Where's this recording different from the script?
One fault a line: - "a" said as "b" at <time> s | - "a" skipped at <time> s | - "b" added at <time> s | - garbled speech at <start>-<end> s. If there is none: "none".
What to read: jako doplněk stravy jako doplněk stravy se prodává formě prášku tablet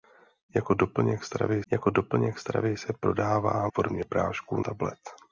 none